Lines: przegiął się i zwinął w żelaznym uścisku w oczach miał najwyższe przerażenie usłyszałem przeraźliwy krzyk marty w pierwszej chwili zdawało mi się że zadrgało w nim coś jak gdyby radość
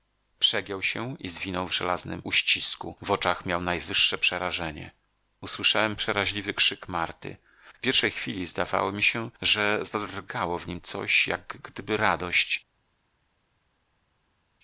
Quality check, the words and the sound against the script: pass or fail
pass